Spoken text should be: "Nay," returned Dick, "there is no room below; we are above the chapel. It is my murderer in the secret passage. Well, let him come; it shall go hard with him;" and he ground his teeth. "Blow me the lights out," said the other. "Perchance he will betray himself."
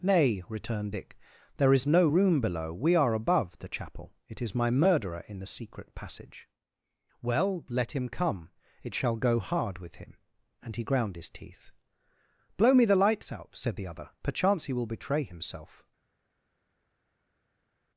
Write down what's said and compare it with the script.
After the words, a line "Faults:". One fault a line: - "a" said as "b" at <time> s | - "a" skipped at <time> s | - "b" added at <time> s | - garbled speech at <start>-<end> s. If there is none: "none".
"Nay," returned Dick, "there is no room below; we are above the chapel. It is my murderer in the secret passage. Well, let him come; it shall go hard with him;" and he ground his teeth. "Blow me the lights out," said the other. "Perchance he will betray himself."
Faults:
none